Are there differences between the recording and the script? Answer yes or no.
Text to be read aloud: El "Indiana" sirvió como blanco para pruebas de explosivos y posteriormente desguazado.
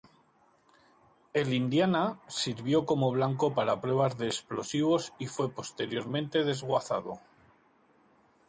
yes